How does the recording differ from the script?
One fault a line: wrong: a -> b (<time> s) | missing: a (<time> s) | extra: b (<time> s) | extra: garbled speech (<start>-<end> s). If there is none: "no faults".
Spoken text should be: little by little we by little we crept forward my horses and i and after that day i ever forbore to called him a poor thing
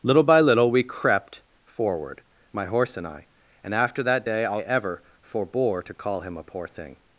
missing: by little we (0.8 s)
wrong: horses -> horse (2.7 s)
wrong: called -> call (5.9 s)